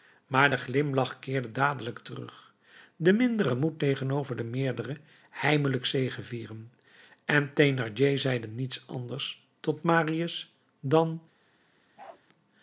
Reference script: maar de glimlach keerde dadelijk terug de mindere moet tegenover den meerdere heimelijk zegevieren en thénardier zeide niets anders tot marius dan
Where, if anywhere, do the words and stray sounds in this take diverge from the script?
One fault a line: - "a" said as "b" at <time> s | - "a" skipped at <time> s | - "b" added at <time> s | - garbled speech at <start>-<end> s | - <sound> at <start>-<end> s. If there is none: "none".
- bark at 12.0-12.2 s